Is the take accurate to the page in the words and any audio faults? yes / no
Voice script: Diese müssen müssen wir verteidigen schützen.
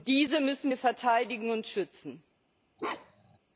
no